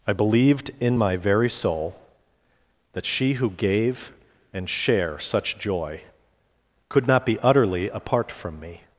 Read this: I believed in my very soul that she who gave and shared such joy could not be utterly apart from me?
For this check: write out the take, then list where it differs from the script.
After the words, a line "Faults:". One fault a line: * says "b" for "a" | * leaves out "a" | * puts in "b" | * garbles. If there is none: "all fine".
I believed in my very soul that she who gave and share such joy could not be utterly apart from me?
Faults:
* says "share" for "shared"